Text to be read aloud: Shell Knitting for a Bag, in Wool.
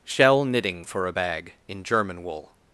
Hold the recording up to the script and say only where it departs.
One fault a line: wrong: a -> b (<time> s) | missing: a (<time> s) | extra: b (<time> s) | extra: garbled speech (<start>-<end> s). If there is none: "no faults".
extra: German (1.8 s)